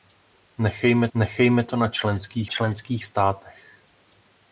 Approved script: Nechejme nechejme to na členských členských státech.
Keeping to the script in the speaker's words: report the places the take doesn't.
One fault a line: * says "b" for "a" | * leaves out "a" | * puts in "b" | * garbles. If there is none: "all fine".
all fine